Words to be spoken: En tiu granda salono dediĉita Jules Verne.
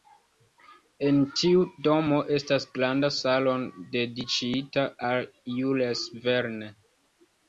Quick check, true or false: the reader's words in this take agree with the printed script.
false